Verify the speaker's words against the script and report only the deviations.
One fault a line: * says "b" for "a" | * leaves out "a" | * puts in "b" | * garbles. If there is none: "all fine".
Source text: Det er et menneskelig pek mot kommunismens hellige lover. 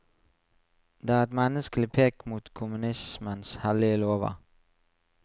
all fine